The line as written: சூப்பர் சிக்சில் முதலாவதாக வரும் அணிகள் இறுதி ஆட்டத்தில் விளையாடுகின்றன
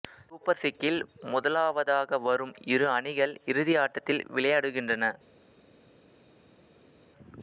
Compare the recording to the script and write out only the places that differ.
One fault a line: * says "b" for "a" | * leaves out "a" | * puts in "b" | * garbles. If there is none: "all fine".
* puts in "இரு"